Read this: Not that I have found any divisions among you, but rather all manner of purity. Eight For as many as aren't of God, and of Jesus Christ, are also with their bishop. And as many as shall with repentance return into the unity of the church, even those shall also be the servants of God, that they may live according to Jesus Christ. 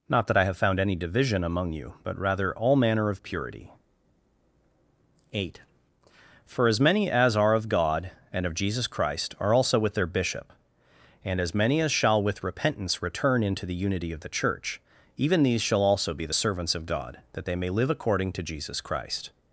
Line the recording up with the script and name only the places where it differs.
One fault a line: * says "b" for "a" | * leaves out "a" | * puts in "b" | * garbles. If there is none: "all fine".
* says "division" for "divisions"
* says "are" for "aren't"
* says "these" for "those"